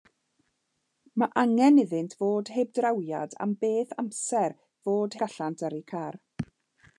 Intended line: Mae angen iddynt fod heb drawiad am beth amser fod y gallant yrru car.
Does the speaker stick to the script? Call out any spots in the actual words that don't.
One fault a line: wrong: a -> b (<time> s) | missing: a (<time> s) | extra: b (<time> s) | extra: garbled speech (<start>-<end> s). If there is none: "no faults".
no faults